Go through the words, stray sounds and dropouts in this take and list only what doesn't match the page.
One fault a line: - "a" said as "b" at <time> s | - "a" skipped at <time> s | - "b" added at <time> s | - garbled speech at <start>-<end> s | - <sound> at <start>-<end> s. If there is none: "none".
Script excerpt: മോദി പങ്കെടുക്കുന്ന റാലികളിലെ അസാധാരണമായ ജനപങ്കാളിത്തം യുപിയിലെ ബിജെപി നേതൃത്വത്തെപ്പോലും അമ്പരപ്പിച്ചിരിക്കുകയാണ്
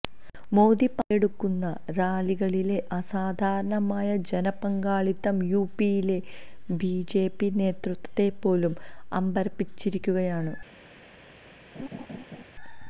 - laugh at 11.8-12.4 s